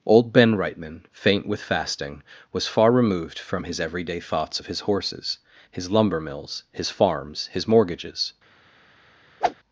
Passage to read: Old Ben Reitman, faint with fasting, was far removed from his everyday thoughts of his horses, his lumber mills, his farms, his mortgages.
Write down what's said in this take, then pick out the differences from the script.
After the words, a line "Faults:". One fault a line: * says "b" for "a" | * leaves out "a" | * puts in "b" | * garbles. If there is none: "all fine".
Old Ben Reitman, faint with fasting, was far removed from his everyday thoughts of his horses, his lumber mills, his farms, his mortgages.
Faults:
all fine